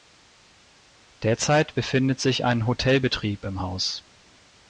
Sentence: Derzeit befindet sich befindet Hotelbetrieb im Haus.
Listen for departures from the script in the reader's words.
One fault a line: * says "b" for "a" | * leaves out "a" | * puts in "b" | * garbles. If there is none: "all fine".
* says "ein" for "befindet"